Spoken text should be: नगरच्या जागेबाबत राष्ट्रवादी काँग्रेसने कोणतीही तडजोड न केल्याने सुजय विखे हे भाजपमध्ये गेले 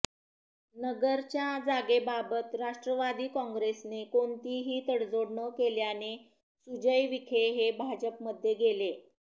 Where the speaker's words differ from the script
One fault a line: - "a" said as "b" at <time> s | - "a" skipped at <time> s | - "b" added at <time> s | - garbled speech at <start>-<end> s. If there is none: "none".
none